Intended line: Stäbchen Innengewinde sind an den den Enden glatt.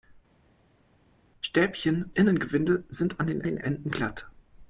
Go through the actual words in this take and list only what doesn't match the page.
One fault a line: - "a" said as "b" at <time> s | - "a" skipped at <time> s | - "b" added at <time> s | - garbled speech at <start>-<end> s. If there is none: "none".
none